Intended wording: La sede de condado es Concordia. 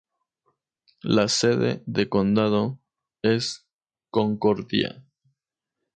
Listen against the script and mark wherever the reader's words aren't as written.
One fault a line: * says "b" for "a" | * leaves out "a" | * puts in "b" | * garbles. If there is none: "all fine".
all fine